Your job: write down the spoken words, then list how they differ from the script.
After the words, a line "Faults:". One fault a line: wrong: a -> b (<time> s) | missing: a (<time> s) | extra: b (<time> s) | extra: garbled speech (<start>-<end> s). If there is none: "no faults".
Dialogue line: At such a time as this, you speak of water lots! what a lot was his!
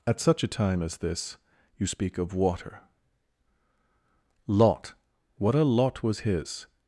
At such a time as this, you speak of water lot! what a lot was his!
Faults:
wrong: lots -> lot (4.5 s)